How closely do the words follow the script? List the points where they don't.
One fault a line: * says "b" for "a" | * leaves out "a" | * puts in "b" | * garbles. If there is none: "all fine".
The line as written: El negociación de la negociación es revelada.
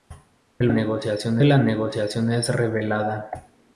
all fine